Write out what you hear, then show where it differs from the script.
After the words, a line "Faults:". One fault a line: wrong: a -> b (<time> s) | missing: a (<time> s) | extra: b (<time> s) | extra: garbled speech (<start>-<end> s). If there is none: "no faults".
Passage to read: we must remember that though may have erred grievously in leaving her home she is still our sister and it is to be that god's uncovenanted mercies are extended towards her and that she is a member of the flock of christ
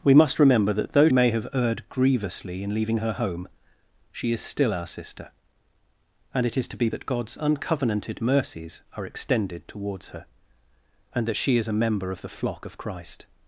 we must remember that though may have erred grievously in leaving her home she is still our sister and it is to be that god's uncovenanted mercies are extended towards her and that she is a member of the flock of christ
Faults:
no faults